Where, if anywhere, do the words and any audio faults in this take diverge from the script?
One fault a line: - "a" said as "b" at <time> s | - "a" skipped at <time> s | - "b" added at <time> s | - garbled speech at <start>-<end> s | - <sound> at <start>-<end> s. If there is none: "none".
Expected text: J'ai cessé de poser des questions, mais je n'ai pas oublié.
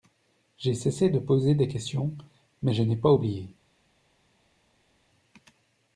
none